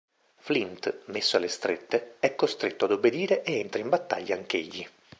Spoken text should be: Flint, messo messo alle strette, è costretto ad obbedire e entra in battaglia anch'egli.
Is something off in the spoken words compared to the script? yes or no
yes